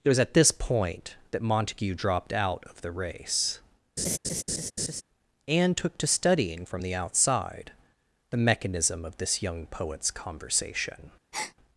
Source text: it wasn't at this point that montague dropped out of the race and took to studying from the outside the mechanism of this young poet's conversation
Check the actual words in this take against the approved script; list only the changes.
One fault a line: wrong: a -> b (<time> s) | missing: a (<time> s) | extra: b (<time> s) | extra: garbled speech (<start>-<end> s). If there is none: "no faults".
wrong: wasn't -> was (0.1 s)